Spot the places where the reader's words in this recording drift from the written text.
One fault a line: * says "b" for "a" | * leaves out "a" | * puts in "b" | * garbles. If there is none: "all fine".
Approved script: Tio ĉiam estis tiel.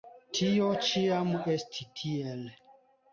all fine